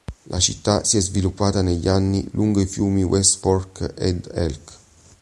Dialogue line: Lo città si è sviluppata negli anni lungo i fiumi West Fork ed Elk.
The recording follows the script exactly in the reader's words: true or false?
false